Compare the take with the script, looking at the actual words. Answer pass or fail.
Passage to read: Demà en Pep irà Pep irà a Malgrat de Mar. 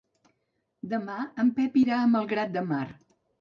fail